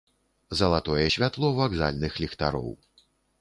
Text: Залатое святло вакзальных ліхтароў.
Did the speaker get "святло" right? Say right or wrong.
right